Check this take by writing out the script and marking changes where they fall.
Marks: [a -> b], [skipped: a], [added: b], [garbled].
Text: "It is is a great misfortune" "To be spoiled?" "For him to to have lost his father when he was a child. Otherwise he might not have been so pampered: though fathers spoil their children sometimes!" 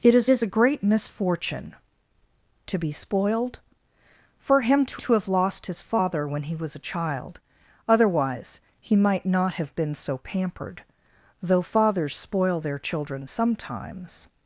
"It is is a great misfortune" "To be spoiled?" "For him to to have lost his father when he was a child. Otherwise he might not have been so pampered: though fathers spoil their children sometimes!"